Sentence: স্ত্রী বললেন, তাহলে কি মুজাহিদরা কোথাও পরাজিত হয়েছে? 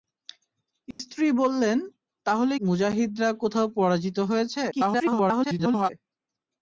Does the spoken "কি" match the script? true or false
false